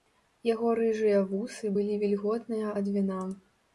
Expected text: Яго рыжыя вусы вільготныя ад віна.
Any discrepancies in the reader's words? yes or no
yes